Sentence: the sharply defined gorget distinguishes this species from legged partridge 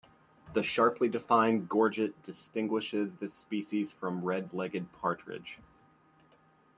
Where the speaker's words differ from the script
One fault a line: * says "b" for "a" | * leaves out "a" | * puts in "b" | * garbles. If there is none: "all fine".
* puts in "red"